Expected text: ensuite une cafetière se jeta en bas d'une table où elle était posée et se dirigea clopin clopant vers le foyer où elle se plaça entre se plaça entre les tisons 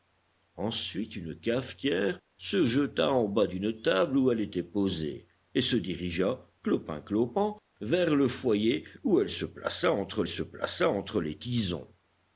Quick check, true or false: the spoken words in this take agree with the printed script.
true